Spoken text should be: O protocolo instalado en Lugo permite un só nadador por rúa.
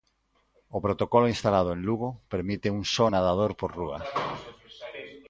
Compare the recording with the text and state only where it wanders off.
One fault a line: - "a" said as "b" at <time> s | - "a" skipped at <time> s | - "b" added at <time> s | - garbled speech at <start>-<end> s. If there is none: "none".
none